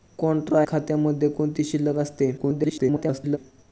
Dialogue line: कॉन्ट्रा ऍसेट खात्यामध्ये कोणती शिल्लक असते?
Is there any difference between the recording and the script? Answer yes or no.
yes